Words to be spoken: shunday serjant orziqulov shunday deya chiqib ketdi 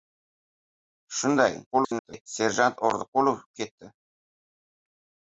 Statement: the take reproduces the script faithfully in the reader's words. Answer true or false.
false